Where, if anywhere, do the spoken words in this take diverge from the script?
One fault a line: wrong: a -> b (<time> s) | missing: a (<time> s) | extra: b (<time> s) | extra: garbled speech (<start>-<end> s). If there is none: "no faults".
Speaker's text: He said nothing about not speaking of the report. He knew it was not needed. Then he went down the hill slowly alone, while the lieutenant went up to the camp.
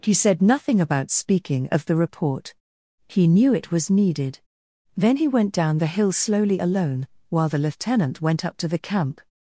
missing: not (1.1 s)
missing: not (3.9 s)